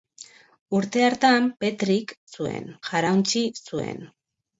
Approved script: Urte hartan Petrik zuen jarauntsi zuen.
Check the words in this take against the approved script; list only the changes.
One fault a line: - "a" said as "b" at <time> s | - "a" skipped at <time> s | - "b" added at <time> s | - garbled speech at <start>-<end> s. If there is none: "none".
none